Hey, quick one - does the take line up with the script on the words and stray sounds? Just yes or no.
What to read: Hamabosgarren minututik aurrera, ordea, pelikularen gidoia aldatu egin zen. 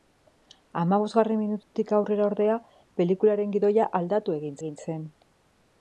no